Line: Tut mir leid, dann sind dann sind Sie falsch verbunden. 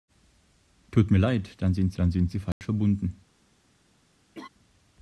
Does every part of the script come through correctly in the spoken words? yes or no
yes